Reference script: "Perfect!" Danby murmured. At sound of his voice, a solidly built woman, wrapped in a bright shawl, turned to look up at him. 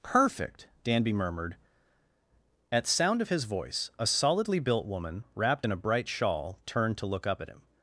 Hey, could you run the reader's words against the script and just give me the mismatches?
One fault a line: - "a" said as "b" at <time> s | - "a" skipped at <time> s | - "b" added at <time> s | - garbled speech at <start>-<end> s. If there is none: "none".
none